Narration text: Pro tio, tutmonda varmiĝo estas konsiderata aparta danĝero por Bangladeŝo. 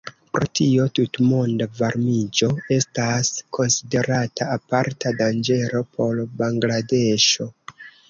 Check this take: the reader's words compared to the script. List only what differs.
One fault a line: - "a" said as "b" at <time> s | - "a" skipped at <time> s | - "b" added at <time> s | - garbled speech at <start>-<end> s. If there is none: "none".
none